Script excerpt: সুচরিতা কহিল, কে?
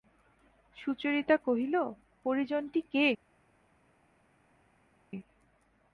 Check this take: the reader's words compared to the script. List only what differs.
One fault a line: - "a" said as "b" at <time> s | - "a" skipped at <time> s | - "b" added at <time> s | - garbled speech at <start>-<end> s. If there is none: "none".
- "পরিজনটি" added at 2.3 s